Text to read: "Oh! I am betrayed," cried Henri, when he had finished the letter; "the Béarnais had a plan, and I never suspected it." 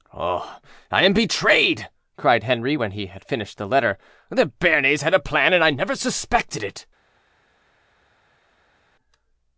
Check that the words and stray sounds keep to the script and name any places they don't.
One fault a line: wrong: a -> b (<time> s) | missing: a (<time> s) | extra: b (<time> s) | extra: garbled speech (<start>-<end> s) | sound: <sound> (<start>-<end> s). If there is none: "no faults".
no faults